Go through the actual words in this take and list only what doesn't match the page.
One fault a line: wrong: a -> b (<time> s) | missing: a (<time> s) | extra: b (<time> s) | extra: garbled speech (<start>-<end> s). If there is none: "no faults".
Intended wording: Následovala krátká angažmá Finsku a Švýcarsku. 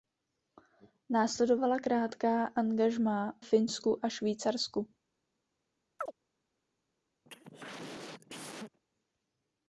no faults